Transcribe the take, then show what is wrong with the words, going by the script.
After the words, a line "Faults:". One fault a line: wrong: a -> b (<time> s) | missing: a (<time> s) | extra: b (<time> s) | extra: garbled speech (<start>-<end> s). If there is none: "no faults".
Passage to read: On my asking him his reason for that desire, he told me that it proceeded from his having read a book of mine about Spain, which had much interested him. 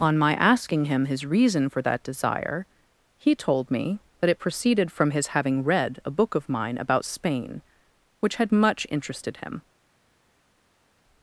On my asking him his reason for that desire, he told me that it proceeded from his having read a book of mine about Spain, which had much interested him.
Faults:
no faults